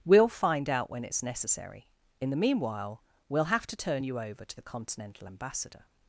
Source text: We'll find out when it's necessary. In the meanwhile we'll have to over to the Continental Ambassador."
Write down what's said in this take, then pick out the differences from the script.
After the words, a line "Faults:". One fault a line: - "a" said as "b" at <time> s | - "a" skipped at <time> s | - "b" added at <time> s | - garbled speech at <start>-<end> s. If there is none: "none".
We'll find out when it's necessary. In the meanwhile we'll have to turn you over to the Continental Ambassador."
Faults:
- "turn you" added at 3.8 s